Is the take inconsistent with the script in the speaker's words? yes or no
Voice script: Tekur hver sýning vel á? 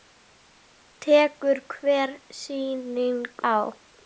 yes